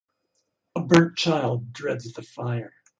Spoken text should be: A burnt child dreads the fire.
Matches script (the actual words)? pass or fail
pass